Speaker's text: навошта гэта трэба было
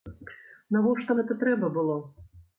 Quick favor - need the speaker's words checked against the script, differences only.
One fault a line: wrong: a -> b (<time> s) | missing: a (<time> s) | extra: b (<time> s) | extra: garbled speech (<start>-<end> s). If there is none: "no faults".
no faults